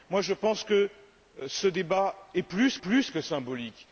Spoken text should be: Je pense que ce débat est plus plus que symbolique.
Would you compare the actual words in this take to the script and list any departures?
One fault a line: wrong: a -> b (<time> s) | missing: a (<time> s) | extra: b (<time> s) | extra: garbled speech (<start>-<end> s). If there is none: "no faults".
no faults